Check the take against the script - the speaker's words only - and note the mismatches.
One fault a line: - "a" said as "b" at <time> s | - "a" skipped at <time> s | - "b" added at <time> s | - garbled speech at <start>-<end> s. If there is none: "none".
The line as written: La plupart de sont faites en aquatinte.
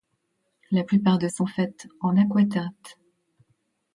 none